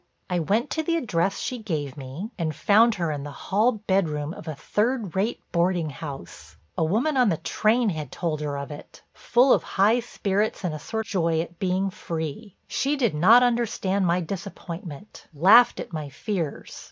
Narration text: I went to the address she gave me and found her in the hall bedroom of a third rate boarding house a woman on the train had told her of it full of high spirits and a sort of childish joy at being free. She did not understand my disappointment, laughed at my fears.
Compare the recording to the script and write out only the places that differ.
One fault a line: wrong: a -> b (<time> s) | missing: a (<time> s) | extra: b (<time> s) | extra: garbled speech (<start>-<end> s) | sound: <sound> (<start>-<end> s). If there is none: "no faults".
missing: of childish (11.1 s)